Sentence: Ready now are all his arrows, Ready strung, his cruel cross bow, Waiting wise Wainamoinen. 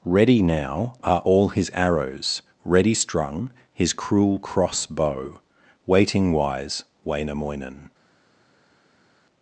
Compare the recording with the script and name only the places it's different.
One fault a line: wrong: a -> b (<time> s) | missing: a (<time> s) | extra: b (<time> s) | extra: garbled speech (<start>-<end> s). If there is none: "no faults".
no faults